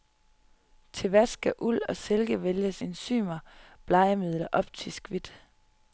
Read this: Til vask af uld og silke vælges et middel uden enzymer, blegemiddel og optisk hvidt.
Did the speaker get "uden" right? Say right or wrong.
wrong